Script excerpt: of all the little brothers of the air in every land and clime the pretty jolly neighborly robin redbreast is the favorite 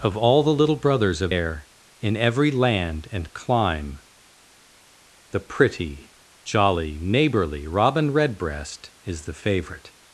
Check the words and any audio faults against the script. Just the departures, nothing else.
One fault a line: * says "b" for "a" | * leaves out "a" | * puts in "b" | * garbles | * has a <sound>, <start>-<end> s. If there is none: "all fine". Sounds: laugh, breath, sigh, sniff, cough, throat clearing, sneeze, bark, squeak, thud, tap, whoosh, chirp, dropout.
* leaves out "the"